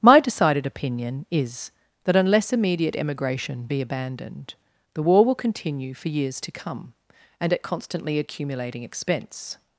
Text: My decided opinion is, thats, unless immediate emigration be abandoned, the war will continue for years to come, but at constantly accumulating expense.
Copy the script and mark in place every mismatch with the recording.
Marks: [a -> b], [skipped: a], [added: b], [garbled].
My decided opinion is, [thats, -> that] unless immediate emigration be abandoned, the war will continue for years to come, [but -> and] at constantly accumulating expense.